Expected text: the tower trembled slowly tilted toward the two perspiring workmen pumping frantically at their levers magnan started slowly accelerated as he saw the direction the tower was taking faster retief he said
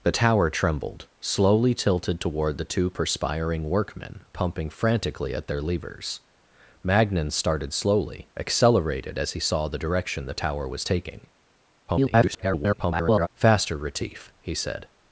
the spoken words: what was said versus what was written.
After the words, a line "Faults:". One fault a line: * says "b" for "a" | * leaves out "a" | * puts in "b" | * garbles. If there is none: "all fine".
the tower trembled slowly tilted toward the two perspiring workmen pumping frantically at their levers magnan started slowly accelerated as he saw the direction the tower was taking [garbled] faster retief he said
Faults:
* garbles